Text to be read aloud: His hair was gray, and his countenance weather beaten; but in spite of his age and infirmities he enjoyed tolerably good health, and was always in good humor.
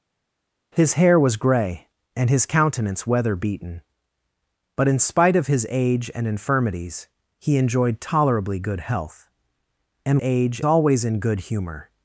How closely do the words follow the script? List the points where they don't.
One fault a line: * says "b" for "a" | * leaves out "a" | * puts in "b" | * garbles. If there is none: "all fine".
* says "age" for "was"